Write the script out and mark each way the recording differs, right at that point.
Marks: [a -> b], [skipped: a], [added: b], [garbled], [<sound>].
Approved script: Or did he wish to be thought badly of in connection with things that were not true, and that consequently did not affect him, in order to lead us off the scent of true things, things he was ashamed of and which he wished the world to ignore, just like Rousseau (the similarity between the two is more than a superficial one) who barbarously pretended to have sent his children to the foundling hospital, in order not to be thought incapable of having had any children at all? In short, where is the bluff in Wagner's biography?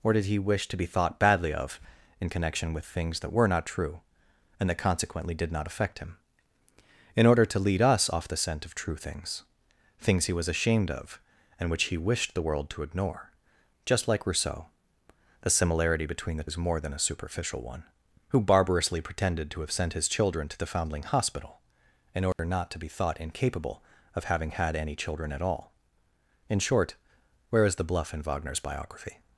Or did he wish to be thought badly of in connection with things that were not true, and that consequently did not affect him, in order to lead us off the scent of true things, things he was ashamed of and which he wished the world to ignore, just like Rousseau (the similarity between the [skipped: two] is more than a superficial one) who barbarously pretended to have sent his children to the foundling hospital, in order [dropout] not to be thought incapable of having had any children at all? In short, where is the bluff in Wagner's biography?